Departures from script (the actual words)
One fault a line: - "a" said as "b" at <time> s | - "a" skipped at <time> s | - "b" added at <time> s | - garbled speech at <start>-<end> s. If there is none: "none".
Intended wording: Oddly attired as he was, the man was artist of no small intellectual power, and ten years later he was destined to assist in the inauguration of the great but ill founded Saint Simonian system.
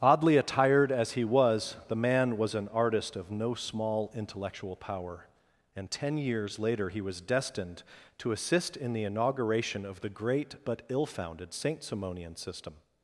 - "an" added at 2.5 s